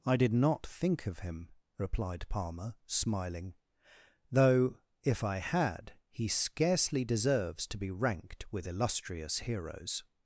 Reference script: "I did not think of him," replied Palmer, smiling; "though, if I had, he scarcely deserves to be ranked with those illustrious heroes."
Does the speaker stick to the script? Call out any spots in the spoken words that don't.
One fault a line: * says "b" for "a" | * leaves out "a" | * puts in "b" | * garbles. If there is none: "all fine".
* leaves out "those"